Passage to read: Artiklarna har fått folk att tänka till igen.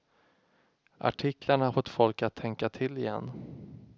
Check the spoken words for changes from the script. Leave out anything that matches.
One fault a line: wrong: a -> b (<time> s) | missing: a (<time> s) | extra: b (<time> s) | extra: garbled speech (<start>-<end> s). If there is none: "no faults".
no faults